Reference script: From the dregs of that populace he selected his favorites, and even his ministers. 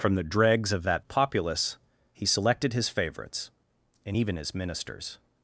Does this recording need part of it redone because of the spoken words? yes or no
no